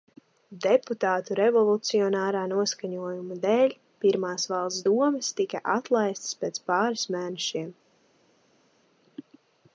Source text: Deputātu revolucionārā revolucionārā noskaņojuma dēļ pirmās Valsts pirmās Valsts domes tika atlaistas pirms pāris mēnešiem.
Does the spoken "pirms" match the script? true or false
false